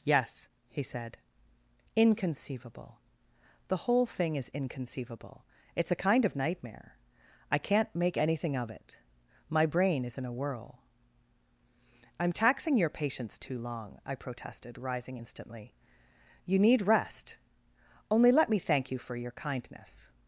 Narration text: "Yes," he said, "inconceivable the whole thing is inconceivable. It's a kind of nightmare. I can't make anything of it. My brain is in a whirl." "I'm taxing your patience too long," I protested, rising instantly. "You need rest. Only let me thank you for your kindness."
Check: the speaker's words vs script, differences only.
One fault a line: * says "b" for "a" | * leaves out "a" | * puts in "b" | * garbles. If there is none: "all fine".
all fine